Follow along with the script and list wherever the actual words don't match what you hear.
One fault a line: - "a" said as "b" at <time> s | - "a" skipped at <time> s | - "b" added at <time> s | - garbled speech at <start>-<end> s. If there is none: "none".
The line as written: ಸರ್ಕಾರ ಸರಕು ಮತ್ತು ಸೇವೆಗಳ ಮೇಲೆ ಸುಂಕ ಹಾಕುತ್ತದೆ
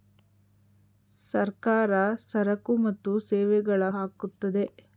- "ಮೇಲೆ ಸುಂಕ" skipped at 3.9 s